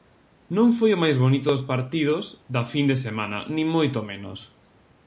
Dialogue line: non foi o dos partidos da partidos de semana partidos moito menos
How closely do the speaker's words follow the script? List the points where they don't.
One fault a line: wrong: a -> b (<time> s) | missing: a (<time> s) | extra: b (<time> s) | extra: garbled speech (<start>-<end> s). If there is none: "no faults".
extra: máis bonito (1.0 s)
wrong: partidos -> fin (2.7 s)
wrong: partidos -> nin (3.5 s)